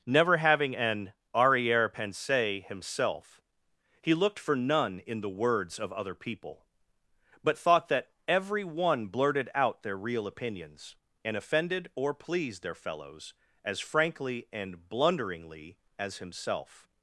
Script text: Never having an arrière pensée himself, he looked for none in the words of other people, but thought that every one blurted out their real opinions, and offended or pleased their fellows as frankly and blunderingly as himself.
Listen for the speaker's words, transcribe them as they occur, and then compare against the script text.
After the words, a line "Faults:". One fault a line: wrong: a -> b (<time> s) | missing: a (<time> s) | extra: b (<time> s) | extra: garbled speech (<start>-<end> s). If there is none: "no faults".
Never having an arrière pensée himself, he looked for none in the words of other people, but thought that every one blurted out their real opinions, and offended or pleased their fellows as frankly and blunderingly as himself.
Faults:
no faults